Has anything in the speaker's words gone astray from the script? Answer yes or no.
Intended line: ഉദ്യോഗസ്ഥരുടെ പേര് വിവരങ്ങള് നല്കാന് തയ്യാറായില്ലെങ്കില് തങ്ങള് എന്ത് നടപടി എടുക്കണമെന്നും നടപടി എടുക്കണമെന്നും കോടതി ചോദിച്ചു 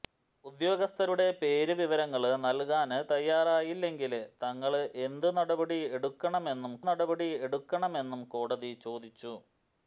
no